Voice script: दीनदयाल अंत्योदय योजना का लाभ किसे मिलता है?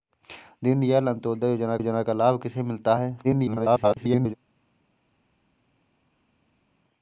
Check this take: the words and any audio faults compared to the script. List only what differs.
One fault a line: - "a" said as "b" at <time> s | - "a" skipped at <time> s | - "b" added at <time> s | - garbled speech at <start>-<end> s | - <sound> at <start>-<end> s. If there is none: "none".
- "योजना" added at 1.8 s
- garbled speech at 3.2-4.3 s